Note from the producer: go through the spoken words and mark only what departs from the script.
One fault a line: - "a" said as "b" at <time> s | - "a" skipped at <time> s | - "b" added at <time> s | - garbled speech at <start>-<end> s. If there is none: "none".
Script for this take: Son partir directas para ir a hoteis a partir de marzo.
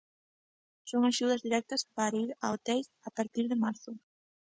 - "partir" said as "axudas" at 1.1 s